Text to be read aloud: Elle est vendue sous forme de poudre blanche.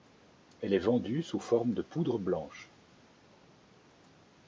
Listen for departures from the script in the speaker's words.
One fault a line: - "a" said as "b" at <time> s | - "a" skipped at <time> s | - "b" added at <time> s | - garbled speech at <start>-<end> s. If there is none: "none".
none